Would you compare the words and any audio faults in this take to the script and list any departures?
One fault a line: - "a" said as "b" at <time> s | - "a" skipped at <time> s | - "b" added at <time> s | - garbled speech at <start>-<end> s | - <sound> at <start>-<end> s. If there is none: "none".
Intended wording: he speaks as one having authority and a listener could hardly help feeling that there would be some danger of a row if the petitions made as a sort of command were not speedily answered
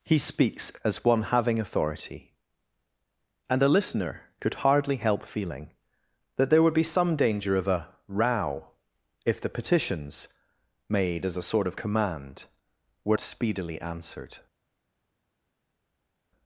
- "not" skipped at 13.2 s